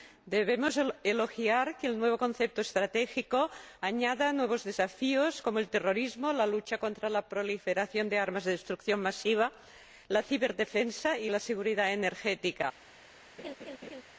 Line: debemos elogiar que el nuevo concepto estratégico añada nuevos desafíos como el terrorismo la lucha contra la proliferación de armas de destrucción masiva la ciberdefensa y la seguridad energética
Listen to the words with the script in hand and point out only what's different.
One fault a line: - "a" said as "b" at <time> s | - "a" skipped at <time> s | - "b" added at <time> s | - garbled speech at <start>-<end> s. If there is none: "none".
none